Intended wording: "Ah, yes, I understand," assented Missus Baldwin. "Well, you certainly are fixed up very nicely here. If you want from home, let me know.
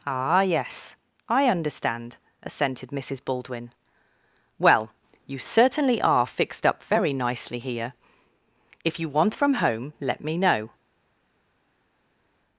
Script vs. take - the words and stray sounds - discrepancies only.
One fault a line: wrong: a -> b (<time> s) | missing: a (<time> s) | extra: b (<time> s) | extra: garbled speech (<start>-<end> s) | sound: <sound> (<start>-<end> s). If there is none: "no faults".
no faults